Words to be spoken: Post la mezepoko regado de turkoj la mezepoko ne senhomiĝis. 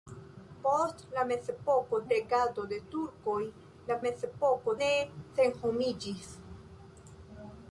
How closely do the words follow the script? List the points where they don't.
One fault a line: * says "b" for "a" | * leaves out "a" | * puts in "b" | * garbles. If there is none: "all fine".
all fine